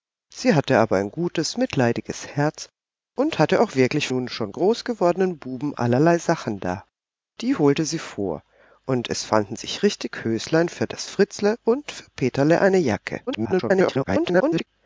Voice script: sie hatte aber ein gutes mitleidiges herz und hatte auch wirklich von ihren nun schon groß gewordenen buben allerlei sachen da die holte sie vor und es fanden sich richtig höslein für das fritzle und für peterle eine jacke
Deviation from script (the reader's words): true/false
true